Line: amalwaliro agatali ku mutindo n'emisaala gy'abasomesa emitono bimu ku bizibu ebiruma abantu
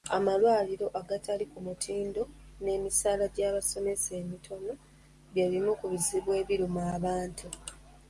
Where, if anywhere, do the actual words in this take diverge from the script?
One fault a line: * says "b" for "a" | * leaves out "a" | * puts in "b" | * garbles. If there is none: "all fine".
* puts in "bye"